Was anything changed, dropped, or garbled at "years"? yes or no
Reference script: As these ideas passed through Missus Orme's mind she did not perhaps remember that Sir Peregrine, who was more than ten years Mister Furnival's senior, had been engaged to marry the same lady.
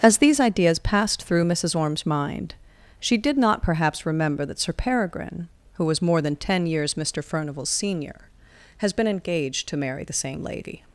no